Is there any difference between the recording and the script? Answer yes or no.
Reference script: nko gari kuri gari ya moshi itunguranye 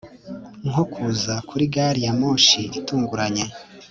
yes